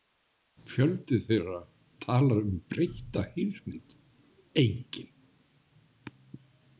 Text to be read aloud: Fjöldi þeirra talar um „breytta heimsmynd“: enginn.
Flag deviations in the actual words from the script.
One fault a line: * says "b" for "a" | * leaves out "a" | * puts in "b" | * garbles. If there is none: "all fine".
all fine